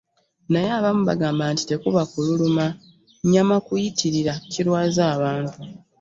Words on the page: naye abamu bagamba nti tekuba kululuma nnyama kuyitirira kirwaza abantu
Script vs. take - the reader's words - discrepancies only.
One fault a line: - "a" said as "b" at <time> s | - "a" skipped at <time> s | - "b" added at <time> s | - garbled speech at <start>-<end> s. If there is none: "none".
none